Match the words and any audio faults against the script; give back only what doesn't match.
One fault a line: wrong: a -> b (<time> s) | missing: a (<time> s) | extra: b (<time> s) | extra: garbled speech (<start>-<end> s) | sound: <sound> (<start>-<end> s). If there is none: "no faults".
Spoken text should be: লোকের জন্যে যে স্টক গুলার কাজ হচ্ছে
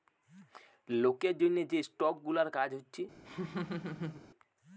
sound: laugh (3.2-4.2 s)